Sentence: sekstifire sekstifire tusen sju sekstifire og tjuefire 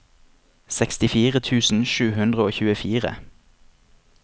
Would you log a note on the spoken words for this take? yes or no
yes